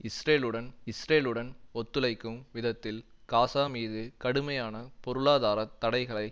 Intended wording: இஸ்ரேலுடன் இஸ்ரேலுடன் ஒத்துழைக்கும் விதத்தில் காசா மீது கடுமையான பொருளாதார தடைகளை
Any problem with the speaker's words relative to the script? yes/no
no